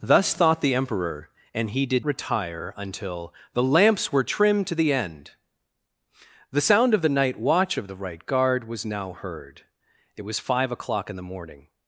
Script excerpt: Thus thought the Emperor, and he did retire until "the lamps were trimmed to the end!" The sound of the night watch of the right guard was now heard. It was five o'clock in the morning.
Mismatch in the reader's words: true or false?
false